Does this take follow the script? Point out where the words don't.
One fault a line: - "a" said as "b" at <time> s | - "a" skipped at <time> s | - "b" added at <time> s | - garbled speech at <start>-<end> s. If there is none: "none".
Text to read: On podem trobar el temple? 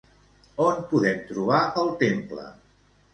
none